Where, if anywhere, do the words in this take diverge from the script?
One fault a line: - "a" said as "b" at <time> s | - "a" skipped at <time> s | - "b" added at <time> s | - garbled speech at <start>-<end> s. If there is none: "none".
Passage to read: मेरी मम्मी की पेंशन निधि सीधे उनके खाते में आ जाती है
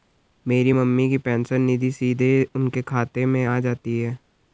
none